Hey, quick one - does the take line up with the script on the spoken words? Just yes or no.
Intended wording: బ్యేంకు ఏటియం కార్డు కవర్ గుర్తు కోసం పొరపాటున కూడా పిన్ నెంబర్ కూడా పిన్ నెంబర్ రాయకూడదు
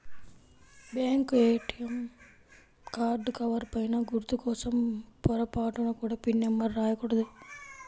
no